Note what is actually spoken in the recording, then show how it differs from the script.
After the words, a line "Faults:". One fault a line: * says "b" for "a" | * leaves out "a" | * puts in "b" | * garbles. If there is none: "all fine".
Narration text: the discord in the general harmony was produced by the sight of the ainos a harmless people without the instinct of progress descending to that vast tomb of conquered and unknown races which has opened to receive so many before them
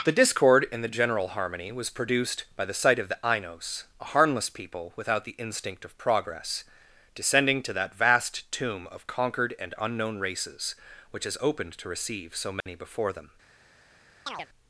the discord in the general harmony was produced by the sight of the ainos a harmless people without the instinct of progress descending to that vast tomb of conquered and unknown races which has opened to receive so many before them
Faults:
all fine